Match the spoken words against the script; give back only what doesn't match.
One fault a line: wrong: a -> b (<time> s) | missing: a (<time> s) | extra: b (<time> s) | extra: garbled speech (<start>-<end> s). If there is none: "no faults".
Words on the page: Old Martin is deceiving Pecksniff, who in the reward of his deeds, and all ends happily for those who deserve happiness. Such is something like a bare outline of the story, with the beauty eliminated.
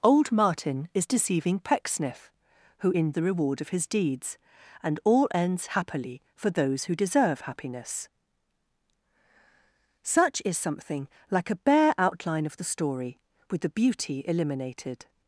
no faults